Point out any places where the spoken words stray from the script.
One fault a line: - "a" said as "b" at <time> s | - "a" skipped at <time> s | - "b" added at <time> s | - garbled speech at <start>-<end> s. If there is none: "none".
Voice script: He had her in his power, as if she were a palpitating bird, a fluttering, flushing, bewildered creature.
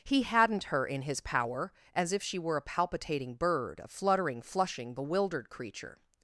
- "had" said as "hadn't" at 0.2 s